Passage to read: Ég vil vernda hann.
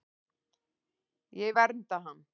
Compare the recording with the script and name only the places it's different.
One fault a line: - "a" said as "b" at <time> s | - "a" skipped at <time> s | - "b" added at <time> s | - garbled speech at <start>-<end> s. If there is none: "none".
- "vil" skipped at 1.6 s